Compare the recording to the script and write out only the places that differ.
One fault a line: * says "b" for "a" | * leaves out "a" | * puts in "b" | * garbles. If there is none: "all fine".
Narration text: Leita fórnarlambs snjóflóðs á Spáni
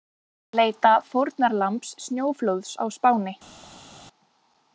all fine